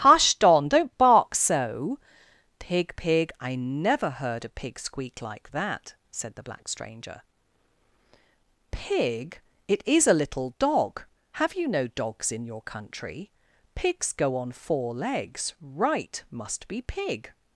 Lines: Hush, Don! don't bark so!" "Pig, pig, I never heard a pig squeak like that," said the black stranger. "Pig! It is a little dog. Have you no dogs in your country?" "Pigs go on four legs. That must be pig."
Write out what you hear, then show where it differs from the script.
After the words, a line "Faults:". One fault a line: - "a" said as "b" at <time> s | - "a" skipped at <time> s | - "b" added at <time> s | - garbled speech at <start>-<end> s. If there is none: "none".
Hush, Don! don't bark so!" "Pig, pig, I never heard a pig squeak like that," said the black stranger. "Pig! It is a little dog. Have you no dogs in your country?" "Pigs go on four legs. Right must be pig."
Faults:
- "That" said as "Right" at 15.6 s